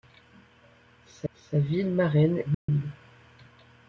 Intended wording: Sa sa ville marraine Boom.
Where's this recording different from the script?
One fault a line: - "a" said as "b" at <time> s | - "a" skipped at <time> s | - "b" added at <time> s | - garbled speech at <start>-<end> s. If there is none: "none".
none